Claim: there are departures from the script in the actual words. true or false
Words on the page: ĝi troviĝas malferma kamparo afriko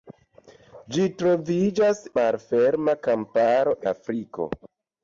false